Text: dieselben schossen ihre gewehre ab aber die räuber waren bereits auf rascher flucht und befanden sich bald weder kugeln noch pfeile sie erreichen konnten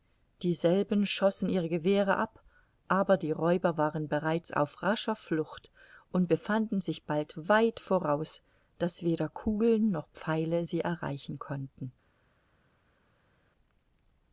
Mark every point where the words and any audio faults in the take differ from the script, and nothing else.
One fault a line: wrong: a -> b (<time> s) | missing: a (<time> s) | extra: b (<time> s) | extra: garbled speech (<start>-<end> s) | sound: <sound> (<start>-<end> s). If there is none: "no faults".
extra: weit voraus daß (7.5 s)